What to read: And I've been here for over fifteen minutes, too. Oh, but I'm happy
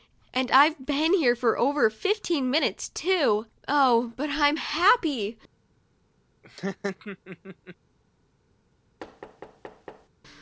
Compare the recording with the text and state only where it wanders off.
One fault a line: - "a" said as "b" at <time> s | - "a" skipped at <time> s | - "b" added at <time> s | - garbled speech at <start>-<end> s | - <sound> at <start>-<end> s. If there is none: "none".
- laugh at 6.4-7.8 s
- thud at 9.0-10.1 s